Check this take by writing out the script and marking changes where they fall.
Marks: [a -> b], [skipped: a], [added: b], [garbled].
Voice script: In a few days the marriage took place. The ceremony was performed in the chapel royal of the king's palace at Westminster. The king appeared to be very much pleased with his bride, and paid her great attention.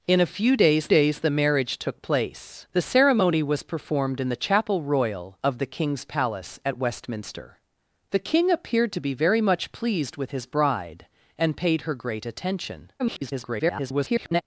In a few days [added: days] the marriage took place. The ceremony was performed in the chapel royal of the king's palace at Westminster. The king appeared to be very much pleased with his bride, and paid her great attention. [garbled]